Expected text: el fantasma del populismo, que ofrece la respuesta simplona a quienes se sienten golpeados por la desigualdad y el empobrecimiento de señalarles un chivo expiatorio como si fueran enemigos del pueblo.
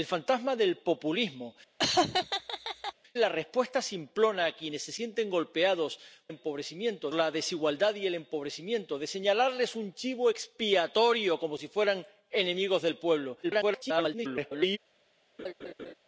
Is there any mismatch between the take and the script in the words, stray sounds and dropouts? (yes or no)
yes